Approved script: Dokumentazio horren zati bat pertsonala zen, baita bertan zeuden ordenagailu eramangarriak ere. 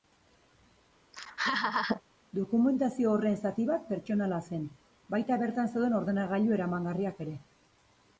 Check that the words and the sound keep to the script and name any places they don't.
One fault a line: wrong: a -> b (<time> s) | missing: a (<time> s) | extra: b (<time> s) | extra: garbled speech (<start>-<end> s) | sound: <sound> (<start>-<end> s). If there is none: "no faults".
sound: laugh (1.1-2.0 s)